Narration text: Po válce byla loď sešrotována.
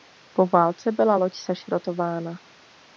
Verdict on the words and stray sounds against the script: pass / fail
pass